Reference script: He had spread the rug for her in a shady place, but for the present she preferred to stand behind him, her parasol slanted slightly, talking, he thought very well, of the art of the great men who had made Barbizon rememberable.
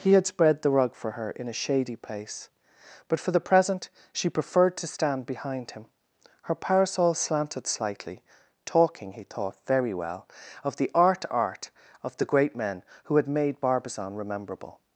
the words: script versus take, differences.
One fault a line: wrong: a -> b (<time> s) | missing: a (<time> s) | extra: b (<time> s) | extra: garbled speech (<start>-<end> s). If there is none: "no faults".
extra: art (11.3 s)